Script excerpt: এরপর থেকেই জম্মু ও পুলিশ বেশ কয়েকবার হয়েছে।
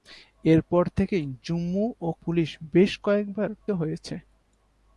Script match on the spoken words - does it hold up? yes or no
yes